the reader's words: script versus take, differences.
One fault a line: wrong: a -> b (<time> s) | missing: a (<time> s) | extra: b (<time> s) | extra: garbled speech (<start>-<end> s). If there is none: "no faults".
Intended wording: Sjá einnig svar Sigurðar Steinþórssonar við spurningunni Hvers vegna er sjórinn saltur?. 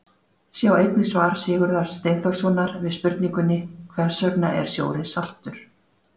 no faults